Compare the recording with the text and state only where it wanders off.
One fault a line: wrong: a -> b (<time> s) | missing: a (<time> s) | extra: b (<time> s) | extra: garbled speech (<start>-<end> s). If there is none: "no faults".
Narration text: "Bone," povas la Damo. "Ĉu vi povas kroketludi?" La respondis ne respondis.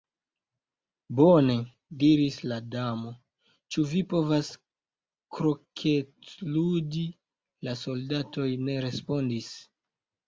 wrong: povas -> diris (2.0 s)
wrong: respondis -> soldatoj (7.9 s)